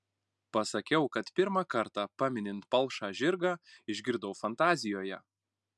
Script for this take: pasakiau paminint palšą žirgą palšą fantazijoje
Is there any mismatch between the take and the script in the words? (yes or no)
yes